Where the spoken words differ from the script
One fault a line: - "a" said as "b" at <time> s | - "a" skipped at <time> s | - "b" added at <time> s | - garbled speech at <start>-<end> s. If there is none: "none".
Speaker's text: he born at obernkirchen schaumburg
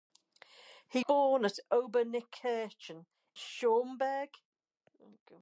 none